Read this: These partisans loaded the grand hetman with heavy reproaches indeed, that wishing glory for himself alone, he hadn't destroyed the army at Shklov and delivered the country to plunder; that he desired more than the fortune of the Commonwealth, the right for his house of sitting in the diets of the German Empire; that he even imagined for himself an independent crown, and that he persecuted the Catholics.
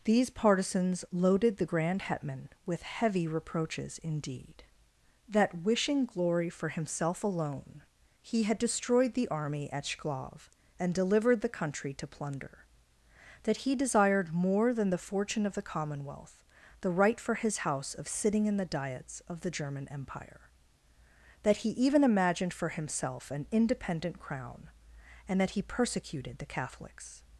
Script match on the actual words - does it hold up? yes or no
no